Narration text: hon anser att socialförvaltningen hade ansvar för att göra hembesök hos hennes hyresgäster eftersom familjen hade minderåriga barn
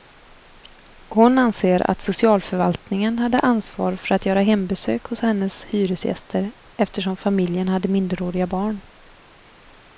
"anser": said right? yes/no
yes